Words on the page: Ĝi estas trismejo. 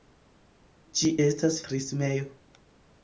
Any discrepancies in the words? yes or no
no